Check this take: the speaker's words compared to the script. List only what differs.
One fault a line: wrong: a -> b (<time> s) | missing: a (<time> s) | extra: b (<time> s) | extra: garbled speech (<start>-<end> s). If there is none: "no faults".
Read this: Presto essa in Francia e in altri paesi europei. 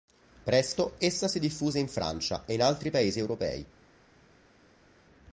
extra: si diffuse (1.3 s)